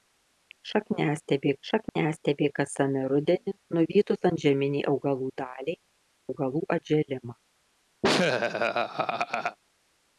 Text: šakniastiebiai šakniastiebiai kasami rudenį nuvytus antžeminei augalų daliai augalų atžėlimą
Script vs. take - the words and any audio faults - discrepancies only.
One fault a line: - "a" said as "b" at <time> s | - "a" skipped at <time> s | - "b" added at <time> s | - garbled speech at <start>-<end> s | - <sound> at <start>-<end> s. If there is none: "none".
- dropout at 1.9-2.0 s
- laugh at 8.0-9.6 s